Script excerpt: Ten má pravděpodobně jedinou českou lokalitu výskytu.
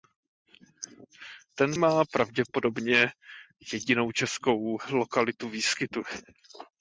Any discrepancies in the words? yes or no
no